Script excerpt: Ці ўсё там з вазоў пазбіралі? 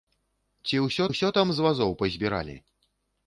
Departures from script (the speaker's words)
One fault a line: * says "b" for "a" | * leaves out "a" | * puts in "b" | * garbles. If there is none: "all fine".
* puts in "ўсё"